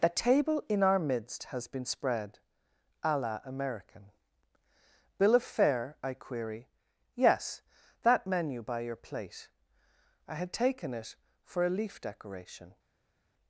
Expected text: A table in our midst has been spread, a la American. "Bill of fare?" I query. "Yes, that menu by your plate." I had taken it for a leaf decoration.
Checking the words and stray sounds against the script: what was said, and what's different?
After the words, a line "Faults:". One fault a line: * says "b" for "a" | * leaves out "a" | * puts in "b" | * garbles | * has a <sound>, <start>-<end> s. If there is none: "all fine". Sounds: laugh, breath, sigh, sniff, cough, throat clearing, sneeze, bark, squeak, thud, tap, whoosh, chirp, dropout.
The table in our midst has been spread, a la American. "Bill of fare?" I query. "Yes, that menu by your plate." I had taken it for a leaf decoration.
Faults:
* says "The" for "A"